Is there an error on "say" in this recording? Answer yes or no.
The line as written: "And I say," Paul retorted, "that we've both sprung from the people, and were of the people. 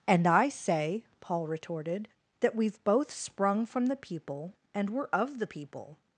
no